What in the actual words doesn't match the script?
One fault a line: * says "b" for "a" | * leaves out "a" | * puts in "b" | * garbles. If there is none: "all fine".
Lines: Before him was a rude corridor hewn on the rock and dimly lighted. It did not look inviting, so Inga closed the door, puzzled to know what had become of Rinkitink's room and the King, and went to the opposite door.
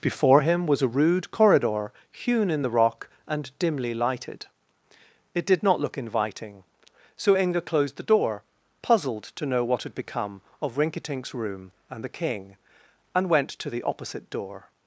* says "in" for "on"